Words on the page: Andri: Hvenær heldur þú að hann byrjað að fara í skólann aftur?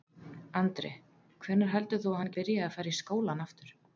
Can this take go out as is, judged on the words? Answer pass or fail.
pass